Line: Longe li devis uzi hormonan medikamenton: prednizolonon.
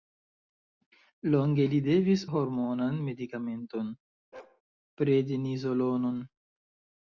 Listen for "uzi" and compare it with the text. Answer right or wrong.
wrong